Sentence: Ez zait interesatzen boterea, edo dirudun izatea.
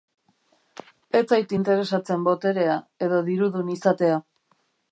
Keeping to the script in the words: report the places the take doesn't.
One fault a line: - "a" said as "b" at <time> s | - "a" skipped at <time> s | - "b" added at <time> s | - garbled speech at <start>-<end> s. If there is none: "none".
none